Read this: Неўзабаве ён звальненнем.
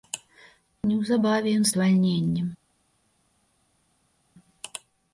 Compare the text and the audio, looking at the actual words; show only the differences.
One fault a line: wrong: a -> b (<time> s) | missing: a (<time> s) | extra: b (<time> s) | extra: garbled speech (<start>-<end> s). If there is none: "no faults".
no faults